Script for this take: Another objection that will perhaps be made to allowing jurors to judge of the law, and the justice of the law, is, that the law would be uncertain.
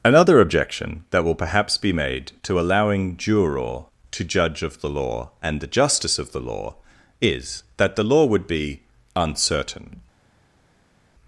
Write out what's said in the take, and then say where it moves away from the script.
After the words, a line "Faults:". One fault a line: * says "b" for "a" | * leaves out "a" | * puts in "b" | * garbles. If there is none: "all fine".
Another objection that will perhaps be made to allowing juror to judge of the law, and the justice of the law, is, that the law would be uncertain.
Faults:
* says "juror" for "jurors"